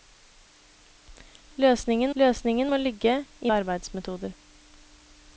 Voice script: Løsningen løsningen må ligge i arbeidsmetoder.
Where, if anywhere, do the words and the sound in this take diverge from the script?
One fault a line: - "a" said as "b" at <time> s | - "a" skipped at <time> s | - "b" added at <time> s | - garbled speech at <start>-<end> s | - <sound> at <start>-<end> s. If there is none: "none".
none